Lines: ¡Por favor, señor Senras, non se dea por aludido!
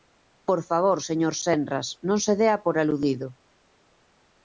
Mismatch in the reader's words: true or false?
false